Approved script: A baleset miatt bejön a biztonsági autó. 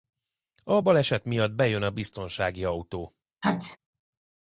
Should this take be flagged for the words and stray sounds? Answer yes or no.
yes